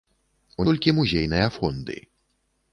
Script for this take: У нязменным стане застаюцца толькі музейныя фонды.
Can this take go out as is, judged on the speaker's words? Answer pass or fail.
fail